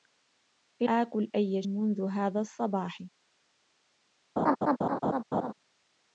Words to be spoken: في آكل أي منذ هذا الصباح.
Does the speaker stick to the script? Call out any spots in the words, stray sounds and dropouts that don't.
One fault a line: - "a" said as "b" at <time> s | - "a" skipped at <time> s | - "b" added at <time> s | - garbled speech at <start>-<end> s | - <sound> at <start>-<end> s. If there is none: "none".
- laugh at 4.4-5.5 s